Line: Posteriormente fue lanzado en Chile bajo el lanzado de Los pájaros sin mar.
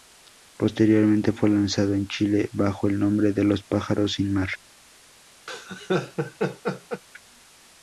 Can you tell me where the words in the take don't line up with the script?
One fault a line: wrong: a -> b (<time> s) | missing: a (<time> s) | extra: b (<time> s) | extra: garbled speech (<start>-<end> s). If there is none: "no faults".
wrong: lanzado -> nombre (3.0 s)